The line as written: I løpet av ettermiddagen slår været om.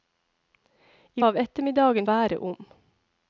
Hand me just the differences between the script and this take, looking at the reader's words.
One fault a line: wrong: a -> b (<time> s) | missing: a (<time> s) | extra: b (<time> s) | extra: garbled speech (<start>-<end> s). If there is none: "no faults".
missing: løpet (1.2 s)
missing: slår (2.1 s)